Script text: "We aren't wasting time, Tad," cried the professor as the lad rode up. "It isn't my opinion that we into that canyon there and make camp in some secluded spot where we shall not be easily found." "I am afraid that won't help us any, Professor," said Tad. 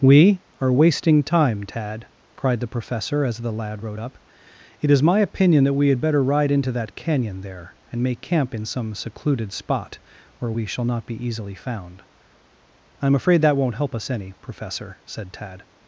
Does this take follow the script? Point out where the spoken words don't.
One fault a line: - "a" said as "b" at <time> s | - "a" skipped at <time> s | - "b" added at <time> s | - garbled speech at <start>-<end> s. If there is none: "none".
- "aren't" said as "are" at 0.6 s
- "isn't" said as "is" at 4.9 s
- "had better ride" added at 5.9 s